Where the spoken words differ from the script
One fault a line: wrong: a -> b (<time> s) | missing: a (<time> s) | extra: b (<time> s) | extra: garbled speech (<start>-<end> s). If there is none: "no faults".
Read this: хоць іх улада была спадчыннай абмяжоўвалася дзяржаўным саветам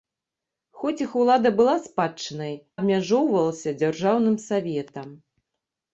no faults